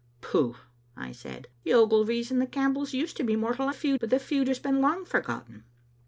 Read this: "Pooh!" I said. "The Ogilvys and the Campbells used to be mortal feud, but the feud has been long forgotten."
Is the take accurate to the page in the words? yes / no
yes